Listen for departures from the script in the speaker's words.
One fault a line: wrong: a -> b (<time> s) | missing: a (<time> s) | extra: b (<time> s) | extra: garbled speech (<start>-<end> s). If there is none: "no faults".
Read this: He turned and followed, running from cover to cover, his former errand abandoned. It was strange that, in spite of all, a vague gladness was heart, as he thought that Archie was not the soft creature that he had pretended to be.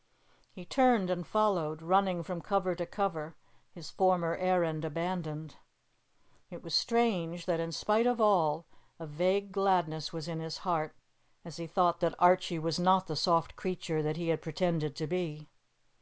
extra: in his (10.3 s)